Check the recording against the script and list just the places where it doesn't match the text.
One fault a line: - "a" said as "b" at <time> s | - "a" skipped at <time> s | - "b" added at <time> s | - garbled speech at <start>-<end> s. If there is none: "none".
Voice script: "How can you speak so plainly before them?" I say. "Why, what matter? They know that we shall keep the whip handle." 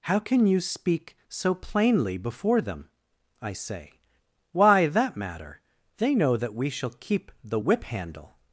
- "what" said as "that" at 4.9 s